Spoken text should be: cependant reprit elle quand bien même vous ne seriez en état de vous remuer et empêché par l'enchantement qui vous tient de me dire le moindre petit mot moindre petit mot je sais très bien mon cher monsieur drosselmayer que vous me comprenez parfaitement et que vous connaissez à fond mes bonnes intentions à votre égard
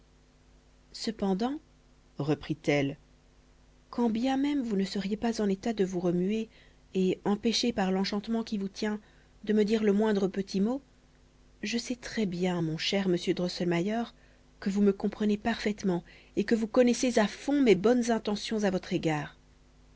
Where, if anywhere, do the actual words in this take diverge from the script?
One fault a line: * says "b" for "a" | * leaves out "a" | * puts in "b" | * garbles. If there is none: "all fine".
* puts in "pas"
* leaves out "moindre petit mot"